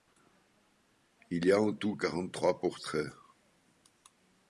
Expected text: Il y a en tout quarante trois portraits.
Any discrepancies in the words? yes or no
no